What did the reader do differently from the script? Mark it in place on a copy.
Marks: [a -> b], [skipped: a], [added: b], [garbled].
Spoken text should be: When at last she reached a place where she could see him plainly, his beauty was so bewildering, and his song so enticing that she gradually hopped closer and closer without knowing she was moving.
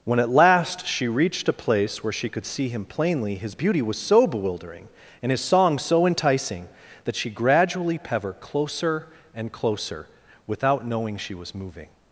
When at last she reached a place where she could see him plainly, his beauty was so bewildering, and his song so enticing that she gradually [hopped -> pever] closer and closer without knowing she was moving.